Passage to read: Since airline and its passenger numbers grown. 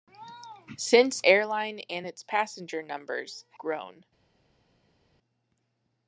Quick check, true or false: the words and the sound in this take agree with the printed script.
true